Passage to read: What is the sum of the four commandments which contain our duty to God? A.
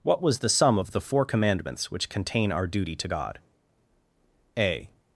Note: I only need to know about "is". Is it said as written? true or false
false